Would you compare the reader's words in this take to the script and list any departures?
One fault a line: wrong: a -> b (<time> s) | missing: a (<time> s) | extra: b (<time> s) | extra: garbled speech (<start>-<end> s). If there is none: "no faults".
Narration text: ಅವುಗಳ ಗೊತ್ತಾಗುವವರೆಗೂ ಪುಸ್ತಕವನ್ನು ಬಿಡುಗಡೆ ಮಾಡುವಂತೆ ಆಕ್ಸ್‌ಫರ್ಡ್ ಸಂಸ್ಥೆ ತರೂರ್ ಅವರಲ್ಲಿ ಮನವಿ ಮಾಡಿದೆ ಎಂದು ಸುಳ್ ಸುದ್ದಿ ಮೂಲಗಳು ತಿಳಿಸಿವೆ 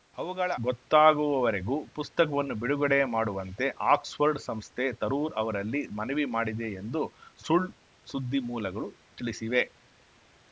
no faults